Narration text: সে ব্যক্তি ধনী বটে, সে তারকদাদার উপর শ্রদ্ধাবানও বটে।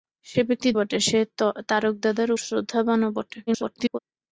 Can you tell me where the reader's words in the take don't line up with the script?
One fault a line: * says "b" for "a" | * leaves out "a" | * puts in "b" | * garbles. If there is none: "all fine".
* leaves out "ধনী"
* leaves out "উপর"
* garbles